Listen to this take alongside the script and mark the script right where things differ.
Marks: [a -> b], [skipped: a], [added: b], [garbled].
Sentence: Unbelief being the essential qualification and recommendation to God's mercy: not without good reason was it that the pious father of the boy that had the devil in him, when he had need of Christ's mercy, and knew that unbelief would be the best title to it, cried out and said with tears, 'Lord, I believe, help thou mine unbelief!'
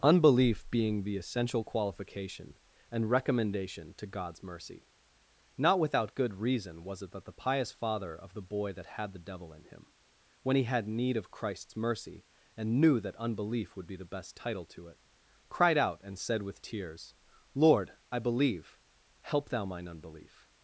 Unbelief being the essential qualification and recommendation to God's mercy: not without good reason was it that the pious father of the boy that had the devil in him, when he had need of Christ's mercy, and knew that unbelief would be the best title to it, cried out and said with tears, 'Lord, I believe, help thou mine unbelief!'